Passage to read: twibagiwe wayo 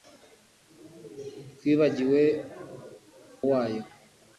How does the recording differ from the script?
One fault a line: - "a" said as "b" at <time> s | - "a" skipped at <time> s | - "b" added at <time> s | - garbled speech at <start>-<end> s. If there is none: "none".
none